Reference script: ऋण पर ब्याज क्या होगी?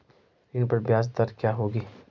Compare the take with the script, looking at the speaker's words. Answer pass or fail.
fail